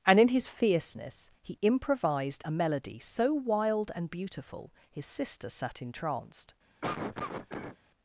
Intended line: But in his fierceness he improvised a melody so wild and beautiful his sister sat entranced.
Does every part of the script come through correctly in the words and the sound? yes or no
no